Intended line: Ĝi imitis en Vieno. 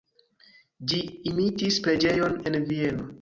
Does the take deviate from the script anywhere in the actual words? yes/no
yes